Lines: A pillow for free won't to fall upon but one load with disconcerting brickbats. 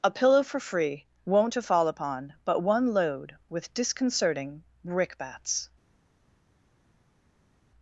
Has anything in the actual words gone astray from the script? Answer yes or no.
no